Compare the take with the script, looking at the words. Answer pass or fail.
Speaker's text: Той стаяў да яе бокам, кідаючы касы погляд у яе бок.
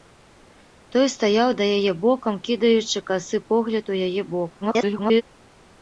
fail